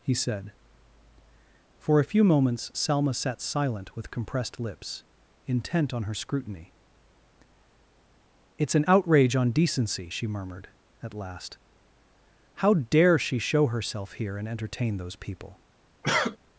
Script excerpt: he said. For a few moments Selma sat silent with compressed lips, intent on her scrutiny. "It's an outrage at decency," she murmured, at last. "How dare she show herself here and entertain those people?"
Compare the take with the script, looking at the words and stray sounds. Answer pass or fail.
fail